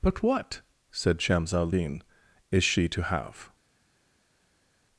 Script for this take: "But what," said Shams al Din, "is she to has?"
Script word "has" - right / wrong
wrong